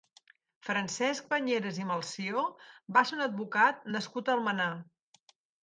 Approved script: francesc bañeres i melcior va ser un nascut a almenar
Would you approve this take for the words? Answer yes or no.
no